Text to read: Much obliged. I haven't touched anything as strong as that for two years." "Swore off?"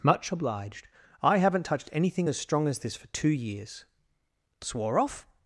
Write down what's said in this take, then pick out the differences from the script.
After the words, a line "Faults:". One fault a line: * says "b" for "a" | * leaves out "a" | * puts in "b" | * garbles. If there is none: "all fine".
Much obliged. I haven't touched anything as strong as this for two years." "Swore off?"
Faults:
* says "this" for "that"